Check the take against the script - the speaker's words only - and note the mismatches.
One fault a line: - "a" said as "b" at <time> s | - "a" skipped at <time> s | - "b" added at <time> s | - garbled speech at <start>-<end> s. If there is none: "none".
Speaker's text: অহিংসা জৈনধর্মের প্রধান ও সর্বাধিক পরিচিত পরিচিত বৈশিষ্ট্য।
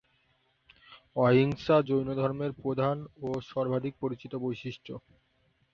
- "পরিচিত" skipped at 4.3 s